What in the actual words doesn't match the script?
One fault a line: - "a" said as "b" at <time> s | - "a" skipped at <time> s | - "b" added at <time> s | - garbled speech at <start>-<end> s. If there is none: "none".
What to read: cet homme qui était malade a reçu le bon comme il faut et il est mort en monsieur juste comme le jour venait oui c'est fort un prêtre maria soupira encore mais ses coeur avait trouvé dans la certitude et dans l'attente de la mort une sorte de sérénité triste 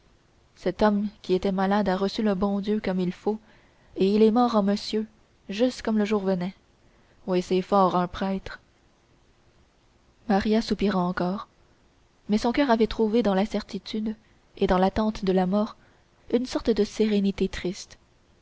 - "dieu" added at 2.6 s
- "ses" said as "son" at 12.4 s